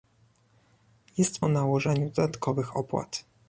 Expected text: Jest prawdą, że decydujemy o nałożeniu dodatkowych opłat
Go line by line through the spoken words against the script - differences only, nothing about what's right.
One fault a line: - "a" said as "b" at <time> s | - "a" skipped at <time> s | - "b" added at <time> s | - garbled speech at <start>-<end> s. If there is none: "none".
- "prawdą że decydujemy" skipped at 1.4 s